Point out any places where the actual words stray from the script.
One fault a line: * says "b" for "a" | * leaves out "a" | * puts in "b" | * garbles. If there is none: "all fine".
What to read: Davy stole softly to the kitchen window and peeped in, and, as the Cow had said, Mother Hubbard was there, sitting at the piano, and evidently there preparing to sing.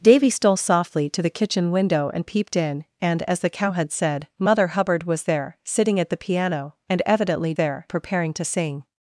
all fine